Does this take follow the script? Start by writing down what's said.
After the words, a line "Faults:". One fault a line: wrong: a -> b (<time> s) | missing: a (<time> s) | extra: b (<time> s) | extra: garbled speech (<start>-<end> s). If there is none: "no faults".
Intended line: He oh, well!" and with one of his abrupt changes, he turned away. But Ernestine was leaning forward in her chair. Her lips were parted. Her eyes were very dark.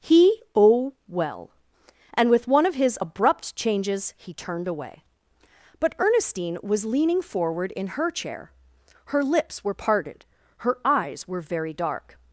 He oh, well!" and with one of his abrupt changes, he turned away. But Ernestine was leaning forward in her chair. Her lips were parted. Her eyes were very dark.
Faults:
no faults